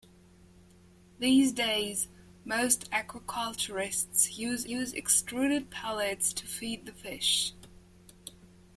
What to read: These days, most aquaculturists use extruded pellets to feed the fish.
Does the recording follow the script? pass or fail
fail